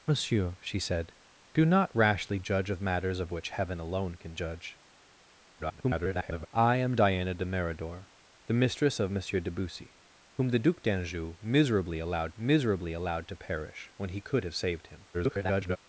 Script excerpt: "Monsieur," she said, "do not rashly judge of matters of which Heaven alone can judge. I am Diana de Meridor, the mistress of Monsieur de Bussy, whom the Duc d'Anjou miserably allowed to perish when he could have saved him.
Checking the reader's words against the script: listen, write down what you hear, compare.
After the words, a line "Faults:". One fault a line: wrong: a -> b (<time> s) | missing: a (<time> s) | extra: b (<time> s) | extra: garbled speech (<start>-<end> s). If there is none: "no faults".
"Monsieur," she said, "do not rashly judge of matters of which Heaven alone can judge. [garbled] I am Diana de Meridor, the mistress of Monsieur de Bussy, whom the Duc d'Anjou miserably allowed miserably allowed to perish when he could have saved him. [garbled]
Faults:
extra: garbled speech (5.6-6.5 s)
extra: miserably allowed (12.3 s)
extra: garbled speech (15.1-15.8 s)